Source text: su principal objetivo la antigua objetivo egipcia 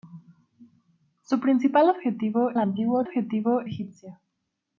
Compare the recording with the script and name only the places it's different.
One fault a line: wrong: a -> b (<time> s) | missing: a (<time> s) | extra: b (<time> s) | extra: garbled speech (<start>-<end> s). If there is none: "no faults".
no faults